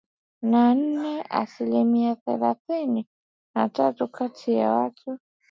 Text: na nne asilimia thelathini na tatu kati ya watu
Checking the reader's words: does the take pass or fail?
pass